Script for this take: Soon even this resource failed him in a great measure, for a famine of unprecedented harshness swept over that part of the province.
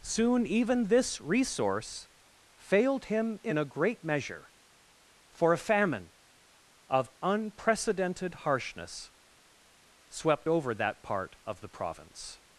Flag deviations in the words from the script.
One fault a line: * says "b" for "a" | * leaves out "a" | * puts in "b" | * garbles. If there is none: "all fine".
all fine